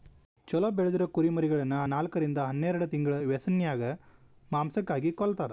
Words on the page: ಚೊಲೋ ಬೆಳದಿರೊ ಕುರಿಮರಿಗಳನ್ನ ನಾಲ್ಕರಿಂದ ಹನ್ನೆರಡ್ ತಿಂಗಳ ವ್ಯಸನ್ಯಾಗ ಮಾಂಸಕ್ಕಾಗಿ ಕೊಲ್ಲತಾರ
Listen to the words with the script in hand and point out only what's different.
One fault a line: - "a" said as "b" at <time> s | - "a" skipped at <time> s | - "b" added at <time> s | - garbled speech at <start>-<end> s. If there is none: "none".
none